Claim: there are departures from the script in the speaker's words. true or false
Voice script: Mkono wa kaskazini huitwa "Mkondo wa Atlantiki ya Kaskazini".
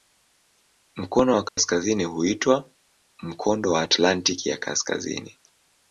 false